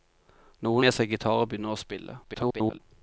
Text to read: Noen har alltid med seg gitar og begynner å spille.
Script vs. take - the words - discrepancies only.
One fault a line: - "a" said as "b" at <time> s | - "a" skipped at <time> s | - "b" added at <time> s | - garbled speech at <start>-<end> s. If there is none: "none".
- "har alltid" skipped at 0.8 s
- garbled speech at 2.2-2.8 s